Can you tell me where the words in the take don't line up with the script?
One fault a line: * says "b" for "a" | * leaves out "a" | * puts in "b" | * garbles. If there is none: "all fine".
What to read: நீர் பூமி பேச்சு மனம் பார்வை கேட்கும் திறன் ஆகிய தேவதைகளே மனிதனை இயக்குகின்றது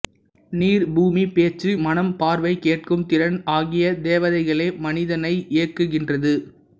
all fine